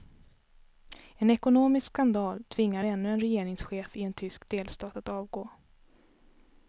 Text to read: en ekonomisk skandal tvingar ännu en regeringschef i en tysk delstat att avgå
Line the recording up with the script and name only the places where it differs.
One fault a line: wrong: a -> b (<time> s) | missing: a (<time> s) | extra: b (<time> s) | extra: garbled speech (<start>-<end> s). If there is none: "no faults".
no faults